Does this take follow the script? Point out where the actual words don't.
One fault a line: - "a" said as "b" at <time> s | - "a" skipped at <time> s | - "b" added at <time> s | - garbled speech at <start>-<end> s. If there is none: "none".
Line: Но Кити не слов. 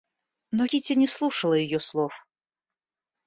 - "слушала ее" added at 1.1 s